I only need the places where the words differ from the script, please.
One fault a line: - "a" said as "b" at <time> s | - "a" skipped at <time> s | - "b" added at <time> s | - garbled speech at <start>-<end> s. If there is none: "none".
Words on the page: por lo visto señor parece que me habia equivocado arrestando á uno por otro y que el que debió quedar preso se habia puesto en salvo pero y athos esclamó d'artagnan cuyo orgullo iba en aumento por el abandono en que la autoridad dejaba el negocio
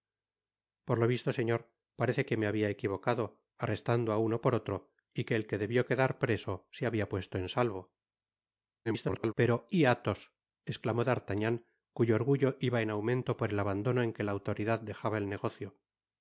- garbled speech at 8.8-9.3 s